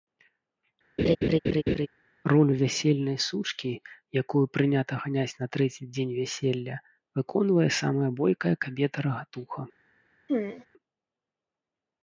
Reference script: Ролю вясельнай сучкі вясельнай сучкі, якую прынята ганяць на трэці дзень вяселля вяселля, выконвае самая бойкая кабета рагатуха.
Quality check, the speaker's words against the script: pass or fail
fail